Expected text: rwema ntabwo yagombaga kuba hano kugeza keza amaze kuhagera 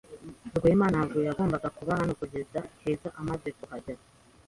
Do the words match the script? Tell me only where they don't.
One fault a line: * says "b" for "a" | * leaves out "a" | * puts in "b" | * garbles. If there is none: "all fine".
all fine